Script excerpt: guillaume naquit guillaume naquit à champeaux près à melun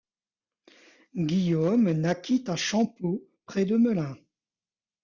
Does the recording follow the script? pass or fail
fail